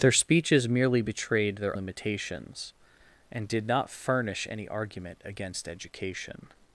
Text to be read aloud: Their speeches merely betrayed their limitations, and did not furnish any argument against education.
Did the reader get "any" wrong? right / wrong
right